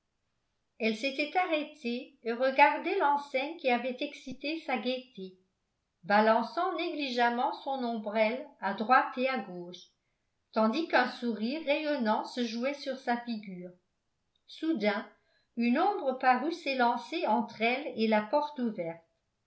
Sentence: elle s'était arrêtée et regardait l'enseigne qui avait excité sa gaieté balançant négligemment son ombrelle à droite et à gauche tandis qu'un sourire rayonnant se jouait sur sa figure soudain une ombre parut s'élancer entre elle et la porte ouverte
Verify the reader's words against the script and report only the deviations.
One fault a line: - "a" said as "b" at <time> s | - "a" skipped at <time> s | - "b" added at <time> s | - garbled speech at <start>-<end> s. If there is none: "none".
none